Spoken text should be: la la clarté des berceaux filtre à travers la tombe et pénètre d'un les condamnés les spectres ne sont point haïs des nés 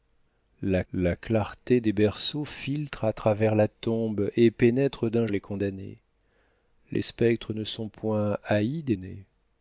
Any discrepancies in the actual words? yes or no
no